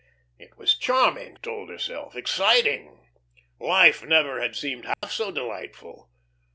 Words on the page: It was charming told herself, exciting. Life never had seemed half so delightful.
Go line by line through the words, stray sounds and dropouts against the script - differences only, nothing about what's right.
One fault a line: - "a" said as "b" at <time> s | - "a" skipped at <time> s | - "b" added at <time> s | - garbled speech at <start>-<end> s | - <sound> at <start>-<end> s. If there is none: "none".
- dropout at 4.9-5.0 s